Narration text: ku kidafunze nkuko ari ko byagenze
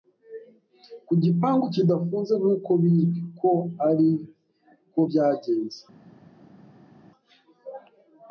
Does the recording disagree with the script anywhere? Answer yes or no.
yes